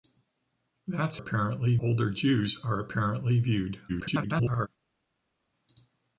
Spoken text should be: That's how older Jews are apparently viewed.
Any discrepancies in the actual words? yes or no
yes